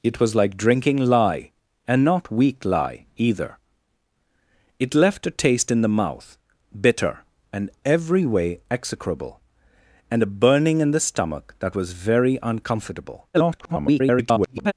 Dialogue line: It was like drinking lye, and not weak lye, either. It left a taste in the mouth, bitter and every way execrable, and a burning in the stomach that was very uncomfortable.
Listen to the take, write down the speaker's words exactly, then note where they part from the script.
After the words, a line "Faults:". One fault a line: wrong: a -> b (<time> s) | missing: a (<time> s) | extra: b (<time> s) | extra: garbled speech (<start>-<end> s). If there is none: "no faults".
It was like drinking lye, and not weak lye, either. It left a taste in the mouth, bitter and every way execrable, and a burning in the stomach that was very uncomfortable. [garbled]
Faults:
extra: garbled speech (13.3-14.7 s)